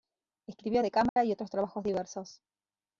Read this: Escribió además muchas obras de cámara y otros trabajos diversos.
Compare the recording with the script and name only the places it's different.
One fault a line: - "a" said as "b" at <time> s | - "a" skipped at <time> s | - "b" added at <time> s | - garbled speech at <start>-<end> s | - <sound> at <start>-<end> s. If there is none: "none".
- "además muchas obras" skipped at 0.8 s
- dropout at 1.1-1.2 s